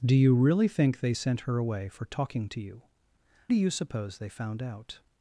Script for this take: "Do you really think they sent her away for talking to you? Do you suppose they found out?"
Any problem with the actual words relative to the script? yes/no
no